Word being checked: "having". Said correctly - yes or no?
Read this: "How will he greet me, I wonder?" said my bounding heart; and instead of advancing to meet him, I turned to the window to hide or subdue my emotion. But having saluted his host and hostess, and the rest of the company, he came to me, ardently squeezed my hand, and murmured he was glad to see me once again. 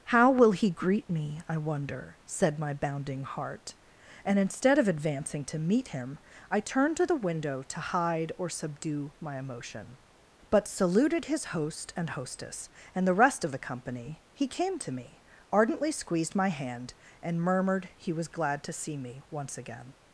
no